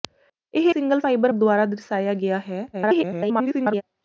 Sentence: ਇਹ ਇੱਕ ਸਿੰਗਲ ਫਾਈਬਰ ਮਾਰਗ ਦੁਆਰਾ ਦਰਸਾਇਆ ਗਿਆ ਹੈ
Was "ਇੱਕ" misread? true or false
true